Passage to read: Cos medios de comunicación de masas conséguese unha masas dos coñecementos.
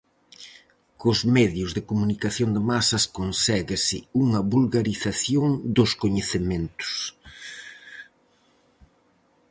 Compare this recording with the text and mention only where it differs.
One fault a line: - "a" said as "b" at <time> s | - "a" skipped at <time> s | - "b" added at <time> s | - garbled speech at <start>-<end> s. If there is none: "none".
- "masas" said as "vulgarización" at 4.5 s